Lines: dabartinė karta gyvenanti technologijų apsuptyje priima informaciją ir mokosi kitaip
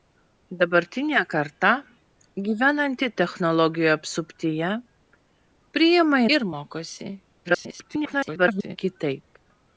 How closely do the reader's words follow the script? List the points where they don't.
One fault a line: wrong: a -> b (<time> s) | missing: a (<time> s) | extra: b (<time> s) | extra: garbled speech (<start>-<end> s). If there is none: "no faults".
missing: informaciją (6.2 s)
extra: garbled speech (7.4-8.8 s)